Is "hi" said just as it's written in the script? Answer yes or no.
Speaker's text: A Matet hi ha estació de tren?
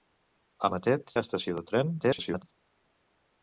no